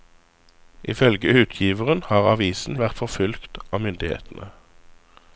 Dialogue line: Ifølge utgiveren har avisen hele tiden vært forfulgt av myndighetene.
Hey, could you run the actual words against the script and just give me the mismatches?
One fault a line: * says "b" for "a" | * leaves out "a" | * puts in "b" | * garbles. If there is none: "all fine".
* leaves out "hele tiden"